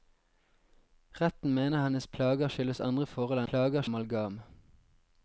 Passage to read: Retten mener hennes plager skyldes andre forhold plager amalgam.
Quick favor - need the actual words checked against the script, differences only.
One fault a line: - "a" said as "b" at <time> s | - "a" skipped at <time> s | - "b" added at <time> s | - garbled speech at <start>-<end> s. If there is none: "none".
none